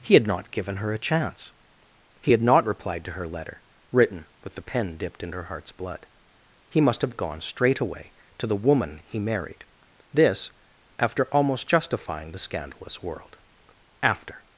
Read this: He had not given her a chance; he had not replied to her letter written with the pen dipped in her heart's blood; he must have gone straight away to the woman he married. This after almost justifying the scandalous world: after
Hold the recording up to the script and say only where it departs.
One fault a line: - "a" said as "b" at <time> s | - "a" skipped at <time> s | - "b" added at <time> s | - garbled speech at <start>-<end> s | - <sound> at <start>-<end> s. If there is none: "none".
none